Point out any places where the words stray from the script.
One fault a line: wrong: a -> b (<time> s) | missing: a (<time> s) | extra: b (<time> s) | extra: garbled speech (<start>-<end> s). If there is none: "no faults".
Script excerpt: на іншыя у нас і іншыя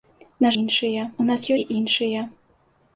no faults